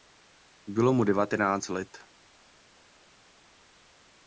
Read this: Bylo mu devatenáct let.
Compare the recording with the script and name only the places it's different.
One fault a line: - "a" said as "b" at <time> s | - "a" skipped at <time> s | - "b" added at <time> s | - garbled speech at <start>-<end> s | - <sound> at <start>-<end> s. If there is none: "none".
none